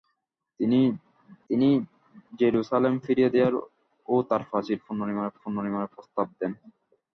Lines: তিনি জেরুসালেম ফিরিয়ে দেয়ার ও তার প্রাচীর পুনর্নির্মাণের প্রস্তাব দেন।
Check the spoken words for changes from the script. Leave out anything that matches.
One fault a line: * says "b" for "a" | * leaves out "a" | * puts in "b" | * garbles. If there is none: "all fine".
* puts in "তিনি"
* puts in "পুনর্নির্মাণের"